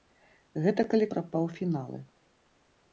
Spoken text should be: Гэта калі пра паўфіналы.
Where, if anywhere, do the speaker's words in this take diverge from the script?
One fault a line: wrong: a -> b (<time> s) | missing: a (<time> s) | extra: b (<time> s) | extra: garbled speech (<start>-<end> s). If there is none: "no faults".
no faults